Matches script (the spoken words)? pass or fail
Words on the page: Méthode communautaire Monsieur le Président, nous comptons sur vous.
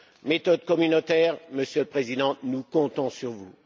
pass